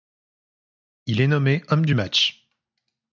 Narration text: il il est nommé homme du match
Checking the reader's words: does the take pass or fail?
fail